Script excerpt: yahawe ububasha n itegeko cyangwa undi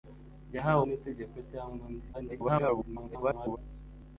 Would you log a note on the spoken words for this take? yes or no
yes